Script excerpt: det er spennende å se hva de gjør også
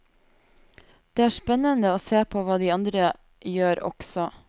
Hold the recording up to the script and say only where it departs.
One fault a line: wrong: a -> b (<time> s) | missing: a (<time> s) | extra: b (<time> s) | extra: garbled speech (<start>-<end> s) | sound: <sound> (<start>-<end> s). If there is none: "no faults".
extra: på (2.2 s)
extra: andre (2.7 s)